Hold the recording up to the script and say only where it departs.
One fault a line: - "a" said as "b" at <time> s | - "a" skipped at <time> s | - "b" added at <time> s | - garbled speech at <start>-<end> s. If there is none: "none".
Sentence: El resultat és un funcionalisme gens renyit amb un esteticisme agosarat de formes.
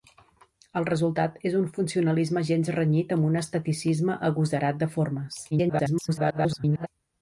- garbled speech at 5.5-6.9 s